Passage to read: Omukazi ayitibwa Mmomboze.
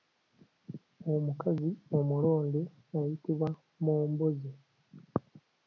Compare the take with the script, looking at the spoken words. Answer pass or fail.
fail